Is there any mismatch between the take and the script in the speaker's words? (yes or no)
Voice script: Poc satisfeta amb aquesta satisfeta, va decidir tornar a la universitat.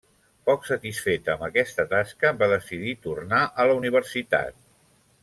yes